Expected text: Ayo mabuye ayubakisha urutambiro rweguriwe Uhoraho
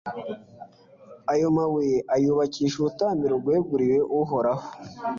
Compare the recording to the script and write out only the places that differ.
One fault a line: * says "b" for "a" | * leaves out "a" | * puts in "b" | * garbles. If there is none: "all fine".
all fine